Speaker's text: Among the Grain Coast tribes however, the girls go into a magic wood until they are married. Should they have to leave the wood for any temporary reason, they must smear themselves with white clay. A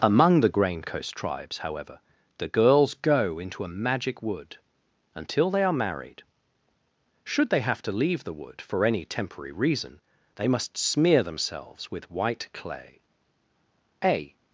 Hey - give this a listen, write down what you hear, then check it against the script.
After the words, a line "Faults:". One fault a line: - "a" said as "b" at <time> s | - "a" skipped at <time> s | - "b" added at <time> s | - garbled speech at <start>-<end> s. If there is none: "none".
Among the Grain Coast tribes however, the girls go into a magic wood until they are married. Should they have to leave the wood for any temporary reason, they must smear themselves with white clay. A
Faults:
none